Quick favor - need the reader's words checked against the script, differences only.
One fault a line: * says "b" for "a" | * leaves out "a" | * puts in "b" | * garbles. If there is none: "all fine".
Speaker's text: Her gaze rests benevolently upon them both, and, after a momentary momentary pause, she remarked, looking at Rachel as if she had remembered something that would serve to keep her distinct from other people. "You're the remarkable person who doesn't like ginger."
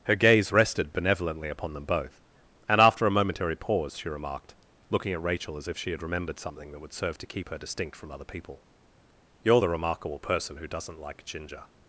* says "rested" for "rests"
* leaves out "momentary"